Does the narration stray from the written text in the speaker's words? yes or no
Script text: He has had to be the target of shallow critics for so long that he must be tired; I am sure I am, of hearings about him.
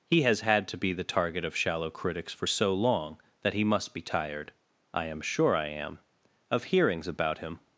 no